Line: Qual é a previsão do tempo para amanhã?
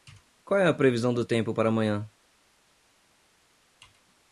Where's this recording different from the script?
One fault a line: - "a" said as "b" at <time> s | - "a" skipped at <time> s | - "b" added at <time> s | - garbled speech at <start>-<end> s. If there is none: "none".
none